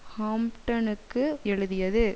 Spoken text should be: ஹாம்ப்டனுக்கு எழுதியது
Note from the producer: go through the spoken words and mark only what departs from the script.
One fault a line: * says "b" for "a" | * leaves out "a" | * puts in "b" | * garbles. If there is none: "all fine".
all fine